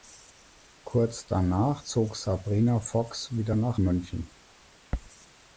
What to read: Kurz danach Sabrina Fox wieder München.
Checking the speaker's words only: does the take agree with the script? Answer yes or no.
no